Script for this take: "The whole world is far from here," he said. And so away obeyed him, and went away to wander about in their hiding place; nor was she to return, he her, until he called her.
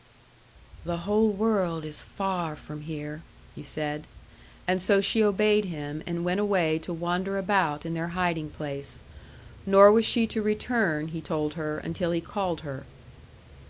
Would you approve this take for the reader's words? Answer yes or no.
no